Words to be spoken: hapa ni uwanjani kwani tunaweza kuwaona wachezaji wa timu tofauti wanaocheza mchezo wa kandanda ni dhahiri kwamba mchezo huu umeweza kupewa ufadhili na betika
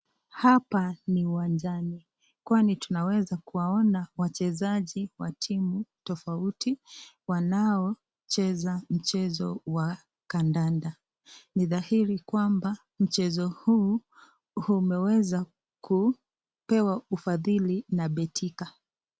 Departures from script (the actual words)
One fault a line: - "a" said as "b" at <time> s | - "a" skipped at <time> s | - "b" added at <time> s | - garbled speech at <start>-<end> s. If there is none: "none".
none